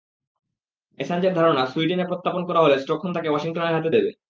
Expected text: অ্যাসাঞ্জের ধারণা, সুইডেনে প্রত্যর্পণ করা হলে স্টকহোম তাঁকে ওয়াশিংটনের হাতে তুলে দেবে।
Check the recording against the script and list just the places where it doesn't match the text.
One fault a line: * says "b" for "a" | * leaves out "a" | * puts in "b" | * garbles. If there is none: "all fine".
* leaves out "তুলে"